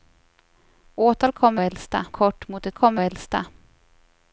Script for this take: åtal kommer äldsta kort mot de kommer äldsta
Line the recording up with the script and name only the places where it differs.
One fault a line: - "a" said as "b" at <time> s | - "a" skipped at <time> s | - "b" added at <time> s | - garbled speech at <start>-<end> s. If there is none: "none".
none